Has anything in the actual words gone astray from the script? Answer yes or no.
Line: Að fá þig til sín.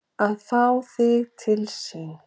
no